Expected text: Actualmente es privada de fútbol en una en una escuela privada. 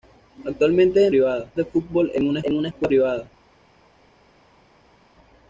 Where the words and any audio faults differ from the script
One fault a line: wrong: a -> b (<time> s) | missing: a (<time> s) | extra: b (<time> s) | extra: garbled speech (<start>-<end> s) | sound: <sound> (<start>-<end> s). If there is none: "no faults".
no faults